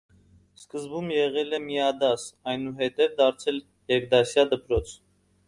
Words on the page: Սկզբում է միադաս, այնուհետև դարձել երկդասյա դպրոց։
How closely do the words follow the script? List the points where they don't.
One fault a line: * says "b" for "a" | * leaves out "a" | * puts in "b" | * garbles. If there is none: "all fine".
* puts in "եղել"